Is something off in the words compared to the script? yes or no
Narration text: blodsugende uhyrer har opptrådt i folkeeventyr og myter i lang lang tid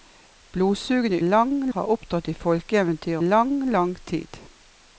yes